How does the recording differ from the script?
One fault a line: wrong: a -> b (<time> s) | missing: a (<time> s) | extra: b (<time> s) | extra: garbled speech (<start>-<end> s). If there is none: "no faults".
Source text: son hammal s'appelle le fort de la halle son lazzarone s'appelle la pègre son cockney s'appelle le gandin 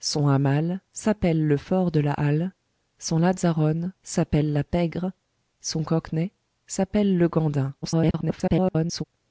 extra: garbled speech (7.8-9.0 s)